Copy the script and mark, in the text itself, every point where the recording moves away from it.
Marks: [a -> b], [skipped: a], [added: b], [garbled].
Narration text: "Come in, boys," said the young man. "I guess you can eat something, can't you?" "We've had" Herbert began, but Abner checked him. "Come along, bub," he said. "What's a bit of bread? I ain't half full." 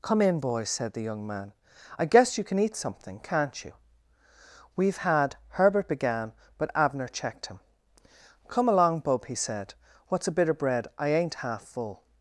"Come in, boys," said the young man. "I guess you can eat something, can't you?" "We've had" Herbert began, but Abner checked him. "Come along, bub," he said. "What's a bit of bread? I ain't half full."